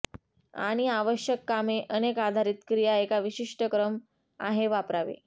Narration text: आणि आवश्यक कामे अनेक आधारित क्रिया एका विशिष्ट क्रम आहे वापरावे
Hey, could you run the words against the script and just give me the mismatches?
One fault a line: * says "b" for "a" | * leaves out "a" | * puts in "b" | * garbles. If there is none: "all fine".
all fine